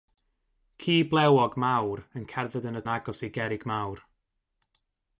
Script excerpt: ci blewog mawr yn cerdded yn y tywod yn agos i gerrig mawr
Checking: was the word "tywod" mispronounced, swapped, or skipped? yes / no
yes